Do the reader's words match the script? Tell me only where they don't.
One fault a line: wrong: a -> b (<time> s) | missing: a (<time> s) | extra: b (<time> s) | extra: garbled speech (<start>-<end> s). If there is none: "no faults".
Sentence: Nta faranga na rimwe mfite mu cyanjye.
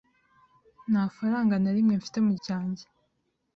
no faults